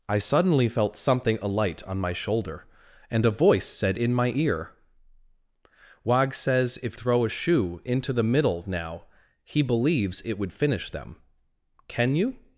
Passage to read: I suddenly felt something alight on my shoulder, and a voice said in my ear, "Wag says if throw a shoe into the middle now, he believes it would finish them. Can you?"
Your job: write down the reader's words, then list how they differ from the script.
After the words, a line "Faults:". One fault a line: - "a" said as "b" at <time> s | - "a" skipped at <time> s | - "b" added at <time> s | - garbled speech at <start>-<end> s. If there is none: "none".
I suddenly felt something alight on my shoulder, and a voice said in my ear, "Wag says if throw a shoe into the middle now, he believes it would finish them. Can you?"
Faults:
none